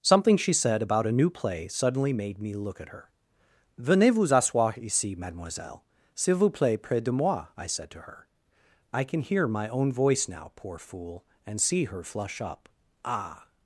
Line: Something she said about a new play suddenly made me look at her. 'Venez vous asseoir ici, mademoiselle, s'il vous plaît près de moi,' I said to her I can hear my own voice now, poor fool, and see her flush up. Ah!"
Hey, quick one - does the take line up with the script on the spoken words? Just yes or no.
yes